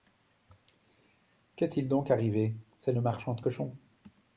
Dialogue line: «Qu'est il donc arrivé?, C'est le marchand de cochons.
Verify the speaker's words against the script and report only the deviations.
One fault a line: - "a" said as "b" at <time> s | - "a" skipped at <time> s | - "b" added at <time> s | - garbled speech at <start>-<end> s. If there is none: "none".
none